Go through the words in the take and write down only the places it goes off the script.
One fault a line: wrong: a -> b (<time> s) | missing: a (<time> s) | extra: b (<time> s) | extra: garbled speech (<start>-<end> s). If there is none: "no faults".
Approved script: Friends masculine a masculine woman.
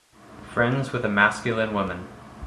wrong: masculine -> with (0.9 s)